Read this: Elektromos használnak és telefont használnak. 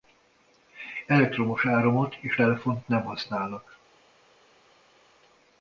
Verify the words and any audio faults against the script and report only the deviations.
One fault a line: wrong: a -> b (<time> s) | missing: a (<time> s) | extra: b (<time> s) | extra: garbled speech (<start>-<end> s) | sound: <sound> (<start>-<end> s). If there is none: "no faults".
wrong: használnak -> áramot (1.6 s)
extra: nem (2.9 s)